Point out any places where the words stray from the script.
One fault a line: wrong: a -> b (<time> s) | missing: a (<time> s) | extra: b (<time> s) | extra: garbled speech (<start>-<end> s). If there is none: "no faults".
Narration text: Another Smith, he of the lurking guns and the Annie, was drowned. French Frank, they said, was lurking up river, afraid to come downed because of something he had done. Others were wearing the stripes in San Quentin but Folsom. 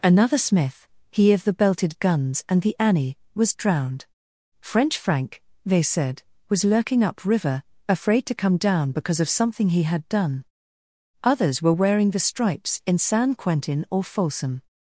wrong: lurking -> belted (1.5 s)
wrong: downed -> down (8.6 s)
wrong: but -> or (13.9 s)